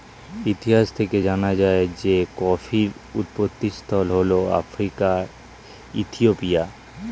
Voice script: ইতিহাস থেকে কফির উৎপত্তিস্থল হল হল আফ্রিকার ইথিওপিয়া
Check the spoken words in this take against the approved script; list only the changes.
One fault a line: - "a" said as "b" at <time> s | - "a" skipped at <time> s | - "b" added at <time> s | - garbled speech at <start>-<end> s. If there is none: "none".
- "জানা যায় যে" added at 1.3 s
- "হল" skipped at 4.3 s